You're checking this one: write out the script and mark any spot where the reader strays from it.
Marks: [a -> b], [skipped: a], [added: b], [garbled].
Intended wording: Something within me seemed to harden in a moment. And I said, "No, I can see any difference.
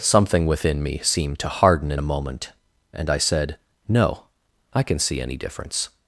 Something within me seemed to harden in a moment. And I said, "No, I can see any difference.